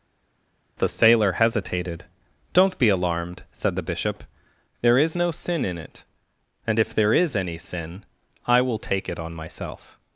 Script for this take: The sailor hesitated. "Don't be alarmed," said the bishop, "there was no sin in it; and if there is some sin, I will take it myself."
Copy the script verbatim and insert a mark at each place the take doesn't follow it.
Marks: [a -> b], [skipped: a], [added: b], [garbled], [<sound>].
The sailor hesitated. "Don't be alarmed," said the bishop, "there [was -> is] no sin in it; and if there is [some -> any] sin, I will take it [added: on] myself."